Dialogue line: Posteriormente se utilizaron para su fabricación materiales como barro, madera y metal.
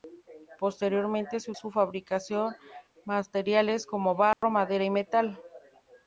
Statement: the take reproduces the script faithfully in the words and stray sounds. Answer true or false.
false